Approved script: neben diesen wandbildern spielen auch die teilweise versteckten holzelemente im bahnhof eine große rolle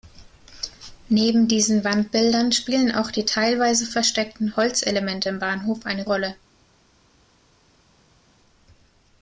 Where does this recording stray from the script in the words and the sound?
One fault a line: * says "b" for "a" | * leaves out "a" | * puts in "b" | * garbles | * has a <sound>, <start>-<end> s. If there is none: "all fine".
* leaves out "große"